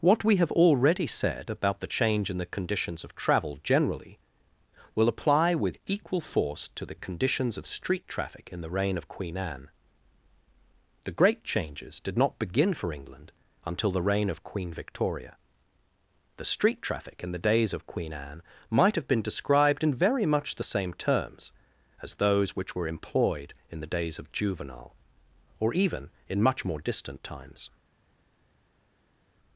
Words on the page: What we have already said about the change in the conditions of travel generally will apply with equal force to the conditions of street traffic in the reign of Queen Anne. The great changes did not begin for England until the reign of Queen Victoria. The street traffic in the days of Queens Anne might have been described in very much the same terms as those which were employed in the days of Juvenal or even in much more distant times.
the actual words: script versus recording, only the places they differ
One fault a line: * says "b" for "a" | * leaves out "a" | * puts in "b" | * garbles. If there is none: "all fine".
* says "Queen" for "Queens"